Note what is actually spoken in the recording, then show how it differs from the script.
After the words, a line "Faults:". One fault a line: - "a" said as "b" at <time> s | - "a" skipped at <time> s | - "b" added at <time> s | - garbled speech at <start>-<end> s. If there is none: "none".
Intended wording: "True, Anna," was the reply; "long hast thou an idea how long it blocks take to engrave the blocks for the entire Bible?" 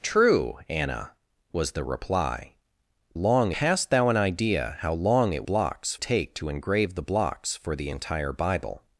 "True, Anna," was the reply; "long hast thou an idea how long it blocks take to engrave the blocks for the entire Bible?"
Faults:
none